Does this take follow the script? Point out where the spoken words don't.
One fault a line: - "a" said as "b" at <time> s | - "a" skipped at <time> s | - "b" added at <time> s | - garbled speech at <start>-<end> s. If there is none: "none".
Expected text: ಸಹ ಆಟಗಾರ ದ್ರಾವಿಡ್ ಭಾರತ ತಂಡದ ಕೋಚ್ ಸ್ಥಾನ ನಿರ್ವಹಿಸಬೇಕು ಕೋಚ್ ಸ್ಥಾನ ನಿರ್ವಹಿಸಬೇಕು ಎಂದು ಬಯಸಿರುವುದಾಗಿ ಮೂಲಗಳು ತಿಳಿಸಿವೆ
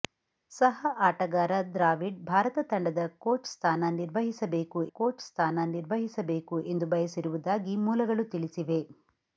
none